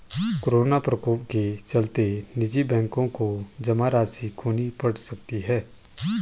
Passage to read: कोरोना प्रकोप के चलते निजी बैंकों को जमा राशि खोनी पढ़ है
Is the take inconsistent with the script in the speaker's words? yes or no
yes